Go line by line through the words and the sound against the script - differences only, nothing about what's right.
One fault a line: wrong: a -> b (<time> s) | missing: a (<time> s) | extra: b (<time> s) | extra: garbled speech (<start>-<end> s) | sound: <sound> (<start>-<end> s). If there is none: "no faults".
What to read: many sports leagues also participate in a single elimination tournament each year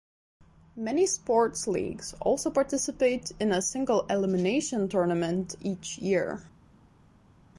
no faults